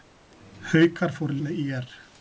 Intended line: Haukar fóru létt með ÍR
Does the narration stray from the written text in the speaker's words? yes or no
yes